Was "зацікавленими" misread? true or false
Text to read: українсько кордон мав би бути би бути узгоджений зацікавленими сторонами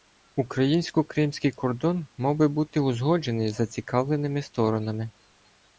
false